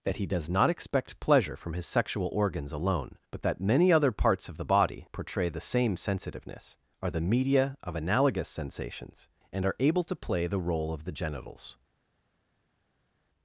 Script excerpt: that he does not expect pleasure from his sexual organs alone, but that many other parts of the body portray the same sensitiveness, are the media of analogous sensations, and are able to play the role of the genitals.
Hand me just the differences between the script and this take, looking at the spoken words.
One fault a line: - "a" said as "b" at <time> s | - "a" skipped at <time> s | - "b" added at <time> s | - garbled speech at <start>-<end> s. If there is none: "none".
none